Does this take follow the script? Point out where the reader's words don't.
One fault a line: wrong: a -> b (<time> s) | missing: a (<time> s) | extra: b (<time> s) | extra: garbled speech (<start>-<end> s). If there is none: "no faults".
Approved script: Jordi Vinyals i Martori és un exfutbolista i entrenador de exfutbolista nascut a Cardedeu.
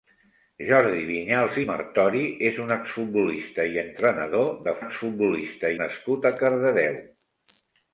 no faults